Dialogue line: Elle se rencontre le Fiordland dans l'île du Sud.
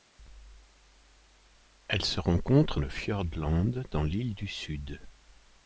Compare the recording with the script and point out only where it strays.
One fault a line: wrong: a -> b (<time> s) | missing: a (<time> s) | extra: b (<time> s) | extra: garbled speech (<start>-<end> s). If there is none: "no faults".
no faults